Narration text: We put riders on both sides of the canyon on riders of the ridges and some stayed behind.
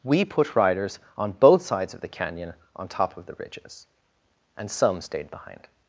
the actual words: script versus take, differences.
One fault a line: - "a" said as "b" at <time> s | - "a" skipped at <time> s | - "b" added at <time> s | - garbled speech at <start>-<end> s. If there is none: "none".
- "riders" said as "top" at 2.9 s